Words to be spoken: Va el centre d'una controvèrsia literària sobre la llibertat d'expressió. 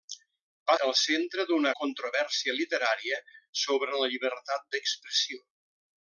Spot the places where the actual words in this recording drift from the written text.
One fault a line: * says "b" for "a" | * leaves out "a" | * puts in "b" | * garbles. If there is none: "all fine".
all fine